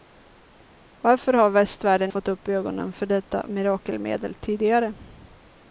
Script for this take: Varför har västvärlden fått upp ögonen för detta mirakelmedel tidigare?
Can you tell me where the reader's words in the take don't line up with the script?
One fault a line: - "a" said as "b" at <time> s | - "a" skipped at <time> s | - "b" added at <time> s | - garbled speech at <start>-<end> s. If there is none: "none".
none